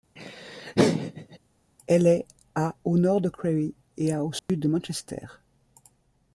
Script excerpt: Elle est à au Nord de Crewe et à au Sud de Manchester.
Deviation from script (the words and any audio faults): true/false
true